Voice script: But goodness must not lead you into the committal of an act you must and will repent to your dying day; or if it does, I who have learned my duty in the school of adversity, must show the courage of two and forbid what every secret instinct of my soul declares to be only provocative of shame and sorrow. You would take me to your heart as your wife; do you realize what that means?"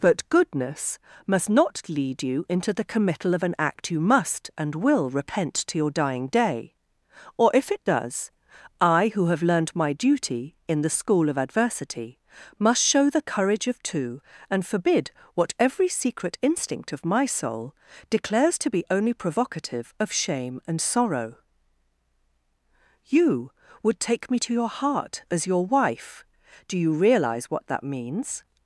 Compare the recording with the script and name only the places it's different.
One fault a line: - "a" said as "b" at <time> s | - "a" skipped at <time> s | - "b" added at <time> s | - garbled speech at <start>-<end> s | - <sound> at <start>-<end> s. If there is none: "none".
none